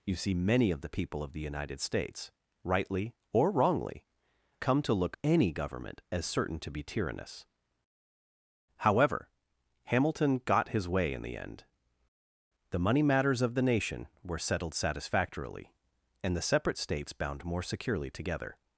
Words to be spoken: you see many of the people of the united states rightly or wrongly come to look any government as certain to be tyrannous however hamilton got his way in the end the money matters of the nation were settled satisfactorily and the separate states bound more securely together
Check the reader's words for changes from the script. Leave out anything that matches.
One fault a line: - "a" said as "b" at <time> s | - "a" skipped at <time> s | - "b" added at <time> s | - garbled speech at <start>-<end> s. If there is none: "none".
none